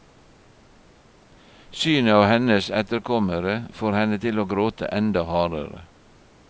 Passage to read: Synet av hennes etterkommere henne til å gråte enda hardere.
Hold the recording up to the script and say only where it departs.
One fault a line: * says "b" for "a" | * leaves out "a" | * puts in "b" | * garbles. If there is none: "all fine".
* puts in "får"